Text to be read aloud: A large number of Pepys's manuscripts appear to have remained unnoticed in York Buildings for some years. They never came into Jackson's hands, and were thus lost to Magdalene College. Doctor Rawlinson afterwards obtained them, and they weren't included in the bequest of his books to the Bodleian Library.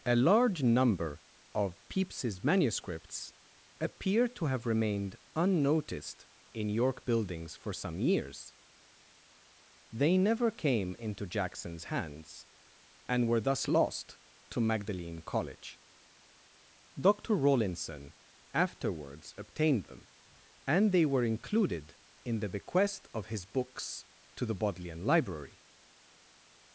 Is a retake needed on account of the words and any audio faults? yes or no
yes